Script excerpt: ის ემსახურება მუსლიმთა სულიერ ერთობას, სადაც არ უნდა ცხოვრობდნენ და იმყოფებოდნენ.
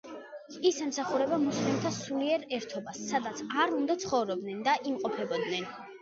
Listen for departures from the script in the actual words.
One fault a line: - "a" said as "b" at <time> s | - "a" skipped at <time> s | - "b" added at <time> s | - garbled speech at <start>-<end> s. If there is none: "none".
none